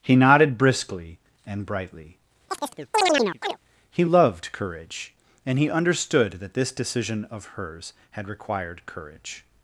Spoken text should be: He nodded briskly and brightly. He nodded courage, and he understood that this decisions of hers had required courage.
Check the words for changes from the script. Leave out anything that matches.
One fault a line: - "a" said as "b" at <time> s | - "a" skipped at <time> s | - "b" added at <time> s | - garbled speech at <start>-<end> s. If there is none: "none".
- "nodded" said as "loved" at 4.0 s
- "decisions" said as "decision" at 6.7 s